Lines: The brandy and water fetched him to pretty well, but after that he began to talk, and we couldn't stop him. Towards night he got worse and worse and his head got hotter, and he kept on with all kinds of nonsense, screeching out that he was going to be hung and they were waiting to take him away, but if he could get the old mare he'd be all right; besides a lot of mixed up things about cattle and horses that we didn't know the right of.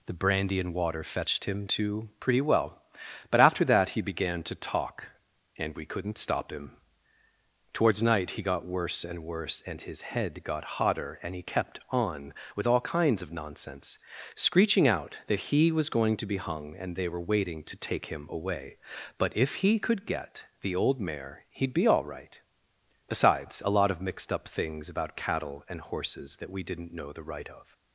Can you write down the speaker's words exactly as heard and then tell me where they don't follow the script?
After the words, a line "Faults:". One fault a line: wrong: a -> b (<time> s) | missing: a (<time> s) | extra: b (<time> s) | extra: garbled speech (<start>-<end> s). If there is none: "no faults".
The brandy and water fetched him to pretty well, but after that he began to talk, and we couldn't stop him. Towards night he got worse and worse and his head got hotter, and he kept on with all kinds of nonsense, screeching out that he was going to be hung and they were waiting to take him away, but if he could get the old mare he'd be all right; besides a lot of mixed up things about cattle and horses that we didn't know the right of.
Faults:
no faults